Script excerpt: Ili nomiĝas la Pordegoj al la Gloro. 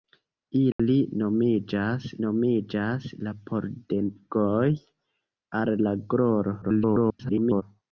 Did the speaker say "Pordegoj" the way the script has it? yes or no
yes